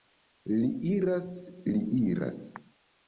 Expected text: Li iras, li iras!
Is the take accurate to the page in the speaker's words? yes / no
yes